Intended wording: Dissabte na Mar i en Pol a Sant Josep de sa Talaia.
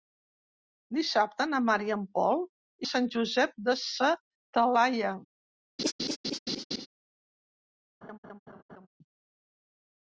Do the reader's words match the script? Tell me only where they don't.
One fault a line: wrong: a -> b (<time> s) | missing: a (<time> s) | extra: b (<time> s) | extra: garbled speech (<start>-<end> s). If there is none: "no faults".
no faults